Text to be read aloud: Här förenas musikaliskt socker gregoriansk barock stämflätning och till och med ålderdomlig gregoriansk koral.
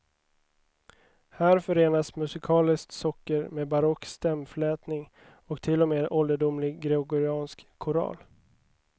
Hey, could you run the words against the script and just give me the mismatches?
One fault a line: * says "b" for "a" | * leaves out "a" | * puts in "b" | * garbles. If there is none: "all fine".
* says "med" for "gregoriansk"